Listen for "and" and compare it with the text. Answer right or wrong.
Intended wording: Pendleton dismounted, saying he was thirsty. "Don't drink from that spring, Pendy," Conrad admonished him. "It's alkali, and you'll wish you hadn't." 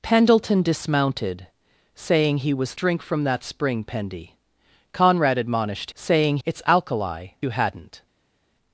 wrong